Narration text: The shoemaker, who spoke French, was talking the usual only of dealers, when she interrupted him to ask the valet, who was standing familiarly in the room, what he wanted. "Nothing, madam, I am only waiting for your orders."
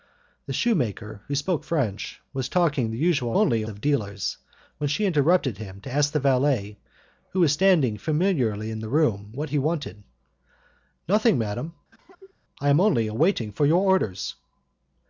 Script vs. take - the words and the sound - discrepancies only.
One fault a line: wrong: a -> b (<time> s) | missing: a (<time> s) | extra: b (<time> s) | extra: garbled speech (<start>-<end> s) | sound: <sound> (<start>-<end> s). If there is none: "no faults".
sound: cough (11.9-12.3 s)